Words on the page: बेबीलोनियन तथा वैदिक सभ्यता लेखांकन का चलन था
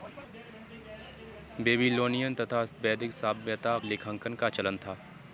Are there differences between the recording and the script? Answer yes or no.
no